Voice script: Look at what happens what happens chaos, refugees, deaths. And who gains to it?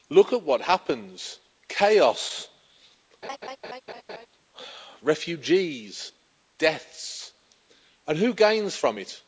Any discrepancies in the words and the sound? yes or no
yes